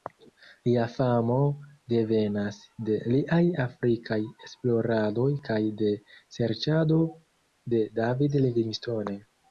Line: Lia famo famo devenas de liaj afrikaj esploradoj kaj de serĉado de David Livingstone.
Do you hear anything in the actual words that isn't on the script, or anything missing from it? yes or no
yes